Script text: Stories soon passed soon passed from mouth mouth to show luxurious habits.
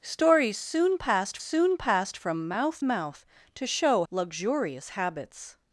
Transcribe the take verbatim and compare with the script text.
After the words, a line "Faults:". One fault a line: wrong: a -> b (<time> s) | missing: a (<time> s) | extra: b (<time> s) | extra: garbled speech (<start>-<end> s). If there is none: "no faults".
Stories soon passed soon passed from mouth mouth to show luxurious habits.
Faults:
no faults